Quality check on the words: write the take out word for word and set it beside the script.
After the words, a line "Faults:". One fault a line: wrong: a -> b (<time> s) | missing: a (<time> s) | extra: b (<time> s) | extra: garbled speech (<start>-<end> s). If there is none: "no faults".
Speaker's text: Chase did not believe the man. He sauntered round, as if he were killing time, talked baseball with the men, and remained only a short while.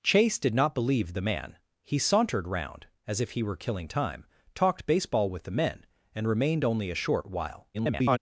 Chase did not believe the man. He sauntered round, as if he were killing time, talked baseball with the men, and remained only a short while. [garbled]
Faults:
extra: garbled speech (7.7-8.2 s)